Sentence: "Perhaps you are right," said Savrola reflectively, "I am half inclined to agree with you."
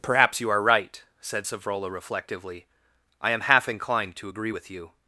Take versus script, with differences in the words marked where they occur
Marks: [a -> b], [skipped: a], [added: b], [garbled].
"Perhaps you are right," said Savrola reflectively, "I am half inclined to agree with you."